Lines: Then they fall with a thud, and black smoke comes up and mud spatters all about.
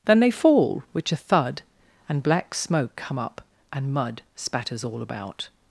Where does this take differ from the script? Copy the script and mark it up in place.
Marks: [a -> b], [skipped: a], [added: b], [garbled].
Then they fall [with -> which] a thud, and black smoke [comes -> come] up and mud spatters all about.